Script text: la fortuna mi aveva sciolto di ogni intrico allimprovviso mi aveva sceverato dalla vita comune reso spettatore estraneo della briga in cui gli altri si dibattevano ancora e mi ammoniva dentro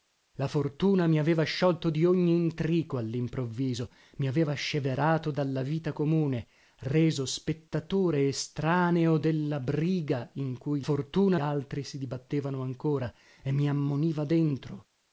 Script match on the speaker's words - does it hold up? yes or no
no